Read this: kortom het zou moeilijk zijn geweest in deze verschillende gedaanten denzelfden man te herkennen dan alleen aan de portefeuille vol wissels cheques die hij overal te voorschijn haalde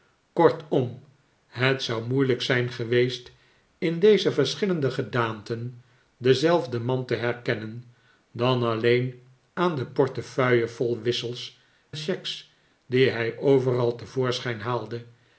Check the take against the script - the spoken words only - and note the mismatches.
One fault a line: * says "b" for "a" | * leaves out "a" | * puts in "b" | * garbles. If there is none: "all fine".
all fine